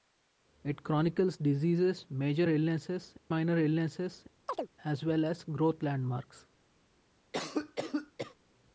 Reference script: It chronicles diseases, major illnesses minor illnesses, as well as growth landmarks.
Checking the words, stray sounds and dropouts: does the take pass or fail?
fail